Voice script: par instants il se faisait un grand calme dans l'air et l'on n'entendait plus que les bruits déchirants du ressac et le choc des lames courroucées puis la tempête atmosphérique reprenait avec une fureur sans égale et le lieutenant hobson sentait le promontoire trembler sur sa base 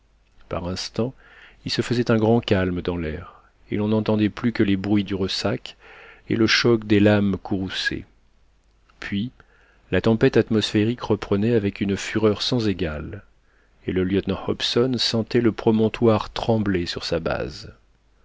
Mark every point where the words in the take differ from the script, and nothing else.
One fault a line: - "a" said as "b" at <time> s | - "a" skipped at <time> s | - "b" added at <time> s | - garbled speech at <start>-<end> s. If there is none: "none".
- "déchirants" skipped at 5.0 s